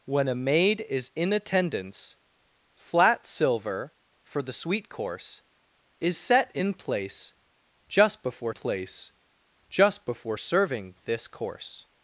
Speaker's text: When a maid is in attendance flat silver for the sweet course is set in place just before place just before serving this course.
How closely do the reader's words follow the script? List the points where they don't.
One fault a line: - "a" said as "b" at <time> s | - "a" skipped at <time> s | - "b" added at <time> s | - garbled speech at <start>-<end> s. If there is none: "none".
none